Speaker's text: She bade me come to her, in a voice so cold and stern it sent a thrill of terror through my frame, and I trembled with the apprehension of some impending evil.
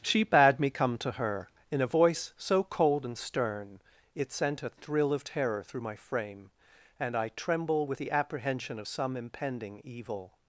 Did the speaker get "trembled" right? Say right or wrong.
wrong